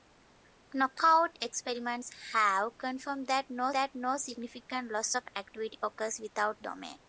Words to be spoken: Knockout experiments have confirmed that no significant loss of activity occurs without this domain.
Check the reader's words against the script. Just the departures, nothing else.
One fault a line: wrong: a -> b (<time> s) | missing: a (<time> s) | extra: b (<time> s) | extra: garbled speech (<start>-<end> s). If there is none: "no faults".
extra: that no (3.7 s)
missing: this (6.6 s)